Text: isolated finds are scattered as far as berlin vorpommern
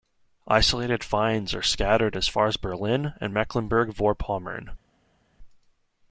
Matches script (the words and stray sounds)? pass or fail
fail